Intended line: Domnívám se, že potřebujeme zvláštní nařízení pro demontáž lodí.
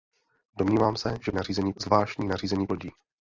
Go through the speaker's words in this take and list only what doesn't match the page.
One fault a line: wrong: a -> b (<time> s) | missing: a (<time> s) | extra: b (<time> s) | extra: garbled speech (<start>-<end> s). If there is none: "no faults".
wrong: potřebujeme -> nařízení (1.3 s)
missing: pro demontáž (2.7 s)